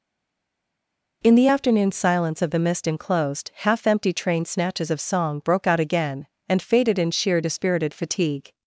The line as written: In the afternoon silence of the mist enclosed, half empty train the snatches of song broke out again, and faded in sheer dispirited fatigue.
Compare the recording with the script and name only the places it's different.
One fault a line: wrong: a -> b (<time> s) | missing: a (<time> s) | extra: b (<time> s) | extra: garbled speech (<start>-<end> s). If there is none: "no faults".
missing: the (4.5 s)